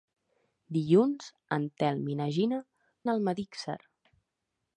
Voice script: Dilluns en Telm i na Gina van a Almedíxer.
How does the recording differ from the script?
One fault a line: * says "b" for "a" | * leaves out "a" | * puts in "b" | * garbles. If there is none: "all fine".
* leaves out "van"